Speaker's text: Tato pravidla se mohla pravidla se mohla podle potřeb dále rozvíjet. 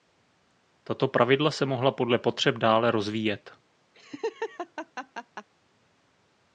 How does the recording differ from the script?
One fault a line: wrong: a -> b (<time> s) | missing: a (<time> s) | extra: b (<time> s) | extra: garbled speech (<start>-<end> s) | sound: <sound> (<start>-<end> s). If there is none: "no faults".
missing: pravidla se mohla (1.9 s)
sound: laugh (3.9-5.5 s)